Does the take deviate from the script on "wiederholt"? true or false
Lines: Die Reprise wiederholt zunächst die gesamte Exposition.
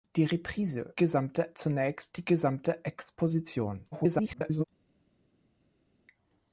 true